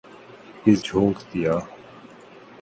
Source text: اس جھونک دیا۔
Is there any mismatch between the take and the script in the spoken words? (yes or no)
no